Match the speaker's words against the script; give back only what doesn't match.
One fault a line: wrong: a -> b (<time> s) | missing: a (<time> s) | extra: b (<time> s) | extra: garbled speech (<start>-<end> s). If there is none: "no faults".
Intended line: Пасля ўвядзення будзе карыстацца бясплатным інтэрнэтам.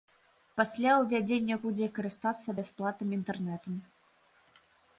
no faults